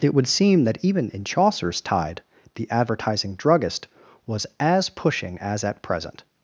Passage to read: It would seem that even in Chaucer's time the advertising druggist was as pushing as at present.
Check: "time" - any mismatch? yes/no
yes